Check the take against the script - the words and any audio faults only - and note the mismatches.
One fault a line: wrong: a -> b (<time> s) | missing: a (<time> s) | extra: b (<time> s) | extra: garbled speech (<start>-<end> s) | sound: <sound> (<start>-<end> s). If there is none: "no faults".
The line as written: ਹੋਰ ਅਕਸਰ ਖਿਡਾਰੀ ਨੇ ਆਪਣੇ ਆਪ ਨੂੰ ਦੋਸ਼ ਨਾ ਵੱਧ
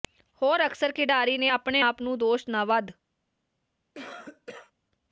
sound: cough (3.9-4.7 s)